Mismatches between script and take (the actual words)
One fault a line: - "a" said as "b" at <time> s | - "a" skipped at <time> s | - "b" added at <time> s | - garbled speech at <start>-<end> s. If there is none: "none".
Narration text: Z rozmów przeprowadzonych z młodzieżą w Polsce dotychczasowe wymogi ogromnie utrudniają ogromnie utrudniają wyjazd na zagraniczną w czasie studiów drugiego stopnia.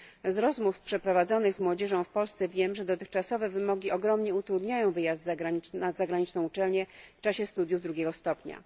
- "wiem że" added at 2.5 s
- "ogromnie utrudniają" skipped at 4.9 s
- "uczelnię" added at 6.4 s